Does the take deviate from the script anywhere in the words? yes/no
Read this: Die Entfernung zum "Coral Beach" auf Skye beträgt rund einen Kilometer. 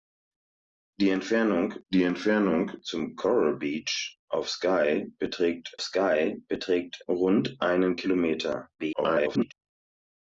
yes